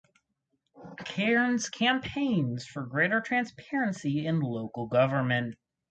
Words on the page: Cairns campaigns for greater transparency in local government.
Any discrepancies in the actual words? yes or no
no